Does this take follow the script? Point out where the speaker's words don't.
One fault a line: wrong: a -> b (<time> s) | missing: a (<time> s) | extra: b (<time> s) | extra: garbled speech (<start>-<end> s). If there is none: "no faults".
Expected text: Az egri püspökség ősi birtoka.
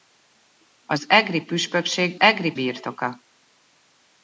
wrong: ősi -> egri (2.2 s)